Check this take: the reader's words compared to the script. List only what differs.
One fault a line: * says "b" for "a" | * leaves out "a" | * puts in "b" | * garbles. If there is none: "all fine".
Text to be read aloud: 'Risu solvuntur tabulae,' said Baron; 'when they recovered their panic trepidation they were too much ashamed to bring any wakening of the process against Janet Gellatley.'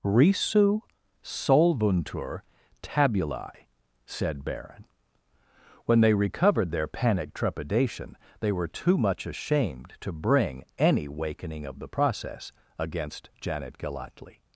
all fine